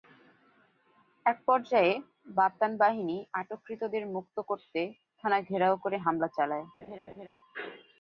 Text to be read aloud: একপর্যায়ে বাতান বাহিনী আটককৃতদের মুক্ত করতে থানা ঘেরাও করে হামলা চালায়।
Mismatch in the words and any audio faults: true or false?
true